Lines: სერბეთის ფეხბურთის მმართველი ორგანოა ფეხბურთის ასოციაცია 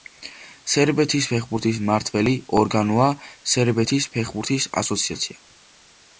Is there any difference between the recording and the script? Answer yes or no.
yes